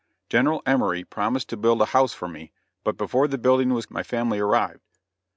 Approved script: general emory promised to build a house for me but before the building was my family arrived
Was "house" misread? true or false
false